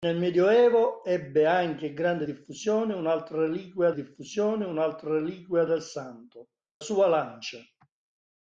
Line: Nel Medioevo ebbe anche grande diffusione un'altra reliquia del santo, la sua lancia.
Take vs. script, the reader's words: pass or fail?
fail